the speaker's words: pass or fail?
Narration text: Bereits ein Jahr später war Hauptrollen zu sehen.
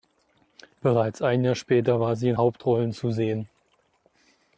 fail